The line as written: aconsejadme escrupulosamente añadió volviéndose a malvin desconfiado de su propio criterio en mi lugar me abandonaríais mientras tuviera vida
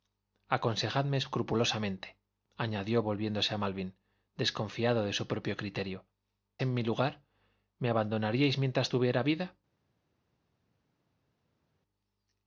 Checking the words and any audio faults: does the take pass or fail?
pass